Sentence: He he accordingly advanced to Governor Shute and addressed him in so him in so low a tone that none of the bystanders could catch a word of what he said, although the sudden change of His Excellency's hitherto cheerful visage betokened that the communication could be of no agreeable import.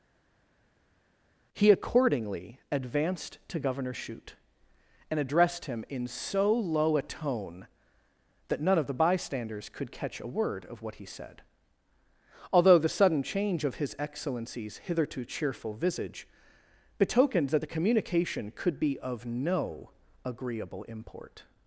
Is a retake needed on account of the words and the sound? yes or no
yes